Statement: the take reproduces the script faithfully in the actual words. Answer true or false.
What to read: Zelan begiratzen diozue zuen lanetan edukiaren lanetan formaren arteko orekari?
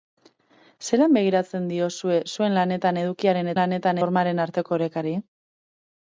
true